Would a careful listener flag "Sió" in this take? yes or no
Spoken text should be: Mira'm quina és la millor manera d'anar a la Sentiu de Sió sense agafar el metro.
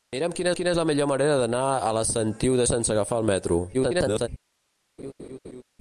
yes